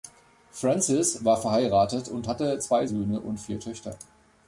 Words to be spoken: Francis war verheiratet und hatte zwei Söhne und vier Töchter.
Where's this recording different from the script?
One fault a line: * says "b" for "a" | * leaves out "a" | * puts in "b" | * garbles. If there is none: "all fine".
all fine